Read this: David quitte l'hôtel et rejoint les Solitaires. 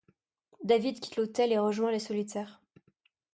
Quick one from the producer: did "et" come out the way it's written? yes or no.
yes